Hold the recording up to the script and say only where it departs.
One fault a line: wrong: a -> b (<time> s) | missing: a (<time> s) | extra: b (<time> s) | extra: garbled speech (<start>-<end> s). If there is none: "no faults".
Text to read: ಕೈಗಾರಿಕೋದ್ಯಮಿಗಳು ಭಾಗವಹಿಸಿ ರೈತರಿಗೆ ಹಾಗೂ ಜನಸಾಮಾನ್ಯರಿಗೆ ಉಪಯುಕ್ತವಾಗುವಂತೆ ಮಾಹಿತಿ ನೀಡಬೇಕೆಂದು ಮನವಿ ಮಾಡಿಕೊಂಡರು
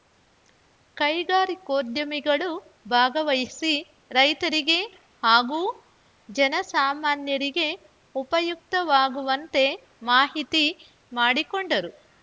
missing: ನೀಡಬೇಕೆಂದು ಮನವಿ (10.7 s)